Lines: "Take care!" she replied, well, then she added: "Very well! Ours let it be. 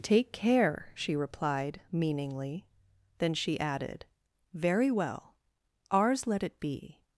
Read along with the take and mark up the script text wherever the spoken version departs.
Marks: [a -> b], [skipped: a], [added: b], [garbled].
"Take care!" she replied, [well, -> meaningly] then she added: "Very well! Ours let it be.